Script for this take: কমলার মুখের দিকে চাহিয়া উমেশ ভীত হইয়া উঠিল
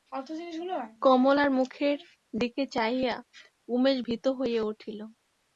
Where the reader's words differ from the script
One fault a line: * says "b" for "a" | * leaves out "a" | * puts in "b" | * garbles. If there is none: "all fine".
all fine